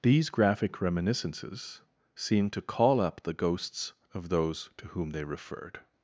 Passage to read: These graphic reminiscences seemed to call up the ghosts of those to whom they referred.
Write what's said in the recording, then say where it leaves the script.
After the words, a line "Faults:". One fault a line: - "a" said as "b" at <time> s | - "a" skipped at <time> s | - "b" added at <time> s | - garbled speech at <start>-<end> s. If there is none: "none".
These graphic reminiscences seemed to call up the ghosts of those to whom they referred.
Faults:
none